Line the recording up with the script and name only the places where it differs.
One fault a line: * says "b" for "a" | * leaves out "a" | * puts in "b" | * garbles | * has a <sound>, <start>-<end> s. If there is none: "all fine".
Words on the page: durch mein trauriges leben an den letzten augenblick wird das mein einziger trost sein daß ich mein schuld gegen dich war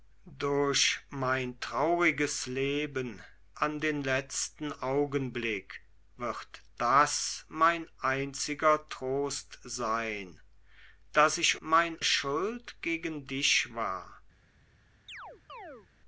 * has a chirp, 15.1-15.9 s